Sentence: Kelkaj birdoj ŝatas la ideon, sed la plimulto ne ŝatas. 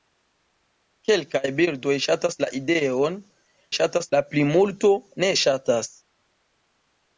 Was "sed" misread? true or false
true